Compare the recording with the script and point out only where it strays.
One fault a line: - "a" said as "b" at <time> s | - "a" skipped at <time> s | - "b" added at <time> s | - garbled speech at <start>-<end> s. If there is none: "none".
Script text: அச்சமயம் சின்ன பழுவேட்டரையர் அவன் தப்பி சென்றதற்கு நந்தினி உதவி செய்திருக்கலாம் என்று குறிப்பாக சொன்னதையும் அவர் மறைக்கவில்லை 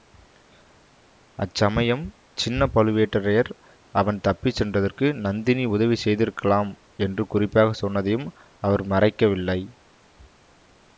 none